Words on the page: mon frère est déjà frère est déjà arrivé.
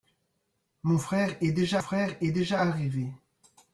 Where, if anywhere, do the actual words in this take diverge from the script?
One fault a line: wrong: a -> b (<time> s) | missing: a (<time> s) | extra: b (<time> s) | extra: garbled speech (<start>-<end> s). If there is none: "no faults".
no faults